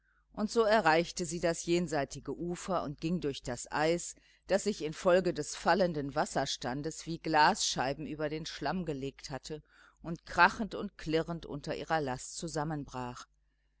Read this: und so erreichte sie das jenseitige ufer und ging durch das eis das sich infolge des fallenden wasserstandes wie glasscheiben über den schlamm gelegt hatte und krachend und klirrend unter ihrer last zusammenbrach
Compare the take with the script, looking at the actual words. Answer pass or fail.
pass